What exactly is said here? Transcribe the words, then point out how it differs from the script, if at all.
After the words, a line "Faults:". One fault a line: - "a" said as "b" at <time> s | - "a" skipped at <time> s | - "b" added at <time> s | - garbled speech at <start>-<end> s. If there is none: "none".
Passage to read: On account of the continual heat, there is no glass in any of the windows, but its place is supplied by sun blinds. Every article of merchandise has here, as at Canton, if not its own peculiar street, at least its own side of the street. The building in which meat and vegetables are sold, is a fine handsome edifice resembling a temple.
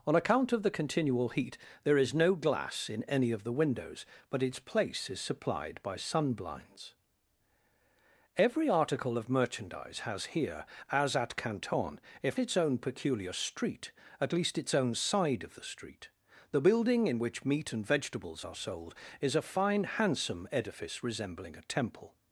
On account of the continual heat, there is no glass in any of the windows, but its place is supplied by sun blinds. Every article of merchandise has here, as at Canton, if its own peculiar street, at least its own side of the street. The building in which meat and vegetables are sold, is a fine handsome edifice resembling a temple.
Faults:
- "not" skipped at 12.4 s